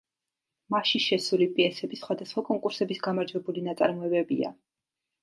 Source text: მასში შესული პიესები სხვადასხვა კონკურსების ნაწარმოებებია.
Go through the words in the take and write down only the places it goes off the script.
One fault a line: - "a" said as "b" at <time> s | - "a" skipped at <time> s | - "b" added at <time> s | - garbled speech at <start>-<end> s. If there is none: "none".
- "გამარჯვებული" added at 3.1 s